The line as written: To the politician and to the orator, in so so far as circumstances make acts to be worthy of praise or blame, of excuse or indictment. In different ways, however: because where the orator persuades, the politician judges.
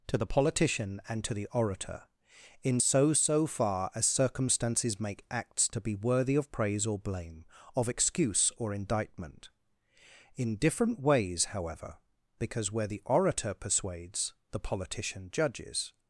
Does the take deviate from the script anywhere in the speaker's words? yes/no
no